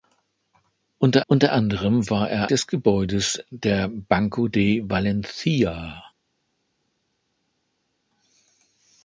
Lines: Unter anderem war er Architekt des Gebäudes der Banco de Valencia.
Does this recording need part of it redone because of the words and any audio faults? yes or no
yes